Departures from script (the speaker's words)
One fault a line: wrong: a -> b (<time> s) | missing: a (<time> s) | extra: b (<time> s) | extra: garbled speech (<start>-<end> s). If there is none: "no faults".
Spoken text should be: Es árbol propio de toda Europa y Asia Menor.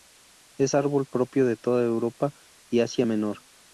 no faults